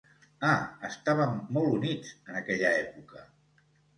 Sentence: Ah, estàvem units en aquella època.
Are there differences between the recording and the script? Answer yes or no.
yes